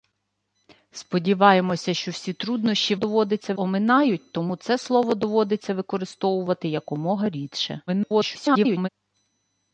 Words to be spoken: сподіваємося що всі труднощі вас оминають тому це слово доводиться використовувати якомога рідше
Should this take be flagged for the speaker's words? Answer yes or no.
yes